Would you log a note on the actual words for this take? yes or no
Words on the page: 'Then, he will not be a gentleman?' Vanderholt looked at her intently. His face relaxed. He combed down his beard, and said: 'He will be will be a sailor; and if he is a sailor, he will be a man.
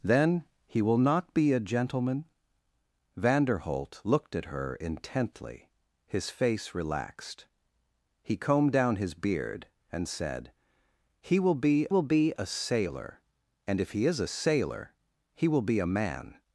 no